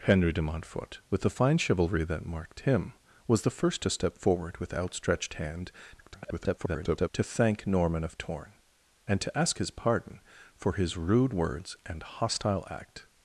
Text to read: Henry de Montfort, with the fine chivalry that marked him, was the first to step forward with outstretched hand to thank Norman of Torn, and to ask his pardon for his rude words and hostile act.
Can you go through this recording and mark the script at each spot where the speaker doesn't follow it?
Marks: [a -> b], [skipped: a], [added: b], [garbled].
Henry de Montfort, with the fine chivalry that marked him, was the first to step forward with outstretched hand [garbled] to thank Norman of Torn, and to ask his pardon for his rude words and hostile act.